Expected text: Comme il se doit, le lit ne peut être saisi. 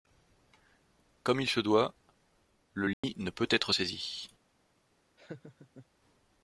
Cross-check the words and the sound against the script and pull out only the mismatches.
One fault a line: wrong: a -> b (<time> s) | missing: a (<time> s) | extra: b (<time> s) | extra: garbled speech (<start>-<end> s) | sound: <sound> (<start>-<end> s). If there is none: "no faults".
sound: dropout (2.9-3.0 s)
sound: laugh (5.2-5.9 s)